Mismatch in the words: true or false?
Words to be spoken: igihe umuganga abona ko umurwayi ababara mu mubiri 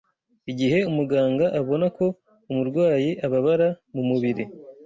false